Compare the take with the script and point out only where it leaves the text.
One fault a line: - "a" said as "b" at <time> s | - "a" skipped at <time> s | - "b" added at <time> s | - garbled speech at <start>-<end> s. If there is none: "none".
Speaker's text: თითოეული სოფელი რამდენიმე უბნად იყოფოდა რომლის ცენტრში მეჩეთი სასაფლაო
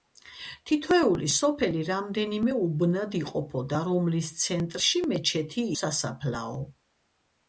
none